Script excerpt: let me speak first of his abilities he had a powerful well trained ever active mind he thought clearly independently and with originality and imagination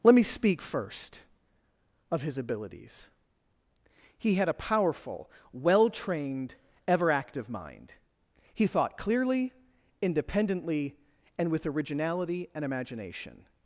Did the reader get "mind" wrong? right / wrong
right